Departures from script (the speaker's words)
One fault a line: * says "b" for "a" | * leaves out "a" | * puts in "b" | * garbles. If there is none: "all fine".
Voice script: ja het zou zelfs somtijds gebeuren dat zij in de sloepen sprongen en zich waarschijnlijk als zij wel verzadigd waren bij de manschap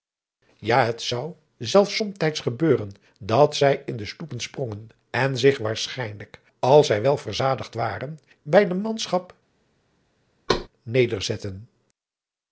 all fine